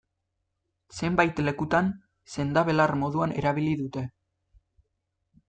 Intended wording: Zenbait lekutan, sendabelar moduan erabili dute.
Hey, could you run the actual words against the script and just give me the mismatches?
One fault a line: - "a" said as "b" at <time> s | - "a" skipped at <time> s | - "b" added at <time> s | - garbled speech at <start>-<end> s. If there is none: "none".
none